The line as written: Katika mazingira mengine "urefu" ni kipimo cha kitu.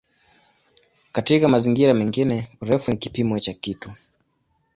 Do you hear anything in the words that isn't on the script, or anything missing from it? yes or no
no